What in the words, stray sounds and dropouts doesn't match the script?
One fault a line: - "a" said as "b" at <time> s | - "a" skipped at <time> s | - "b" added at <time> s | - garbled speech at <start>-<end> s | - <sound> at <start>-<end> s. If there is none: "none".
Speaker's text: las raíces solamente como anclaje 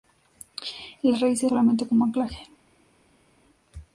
none